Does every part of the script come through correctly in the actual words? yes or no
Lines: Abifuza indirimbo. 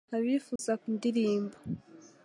yes